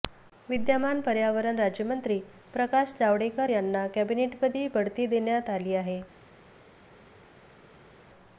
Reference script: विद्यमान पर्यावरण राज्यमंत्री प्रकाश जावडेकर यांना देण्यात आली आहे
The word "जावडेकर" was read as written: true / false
true